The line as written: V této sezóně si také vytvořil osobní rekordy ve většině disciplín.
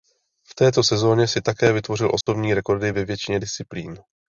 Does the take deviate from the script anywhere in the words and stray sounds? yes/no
yes